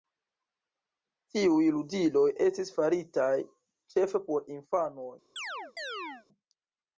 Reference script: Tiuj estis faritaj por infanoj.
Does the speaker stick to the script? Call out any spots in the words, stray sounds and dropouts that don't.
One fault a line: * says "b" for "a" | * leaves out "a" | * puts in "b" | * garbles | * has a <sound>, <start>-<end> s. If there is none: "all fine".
* puts in "ludiloj"
* puts in "ĉefe"
* has a chirp, 5.4-6.3 s